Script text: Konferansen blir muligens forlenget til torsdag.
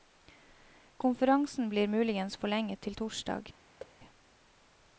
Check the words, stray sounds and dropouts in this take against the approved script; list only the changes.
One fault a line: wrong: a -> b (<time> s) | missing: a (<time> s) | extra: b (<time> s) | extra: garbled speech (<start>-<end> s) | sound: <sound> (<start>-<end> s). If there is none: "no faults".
sound: thud (3.8-4.0 s)